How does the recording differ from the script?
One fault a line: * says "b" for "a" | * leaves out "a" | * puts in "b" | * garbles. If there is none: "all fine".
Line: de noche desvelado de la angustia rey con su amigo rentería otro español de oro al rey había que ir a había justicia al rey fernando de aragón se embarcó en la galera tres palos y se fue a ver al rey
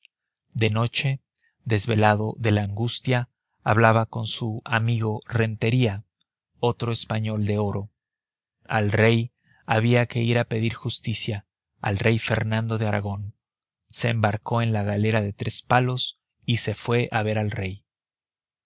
* says "hablaba" for "rey"
* says "pedir" for "había"
* puts in "de"